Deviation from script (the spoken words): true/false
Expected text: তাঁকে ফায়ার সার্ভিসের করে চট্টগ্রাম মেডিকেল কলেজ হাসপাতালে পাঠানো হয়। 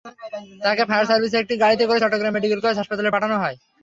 true